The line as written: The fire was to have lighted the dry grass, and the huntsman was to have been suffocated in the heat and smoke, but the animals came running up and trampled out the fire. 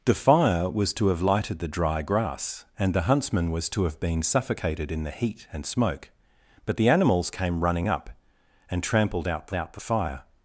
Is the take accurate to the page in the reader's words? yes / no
no